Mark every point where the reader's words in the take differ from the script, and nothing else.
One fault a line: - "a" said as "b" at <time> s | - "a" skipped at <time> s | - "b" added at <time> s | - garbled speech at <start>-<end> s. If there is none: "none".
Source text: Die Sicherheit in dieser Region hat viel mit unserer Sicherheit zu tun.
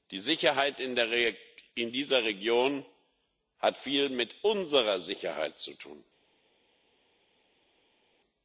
none